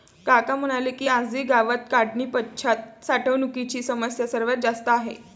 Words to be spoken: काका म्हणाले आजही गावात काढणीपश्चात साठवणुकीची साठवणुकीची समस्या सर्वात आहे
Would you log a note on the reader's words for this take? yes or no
yes